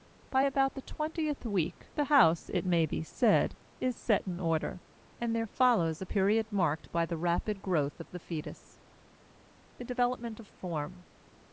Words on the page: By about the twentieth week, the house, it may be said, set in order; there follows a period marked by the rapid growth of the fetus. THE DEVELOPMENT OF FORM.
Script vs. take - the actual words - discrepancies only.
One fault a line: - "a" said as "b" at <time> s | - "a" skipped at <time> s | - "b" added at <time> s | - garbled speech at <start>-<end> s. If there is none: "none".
- "is" added at 3.8 s
- "and" added at 5.2 s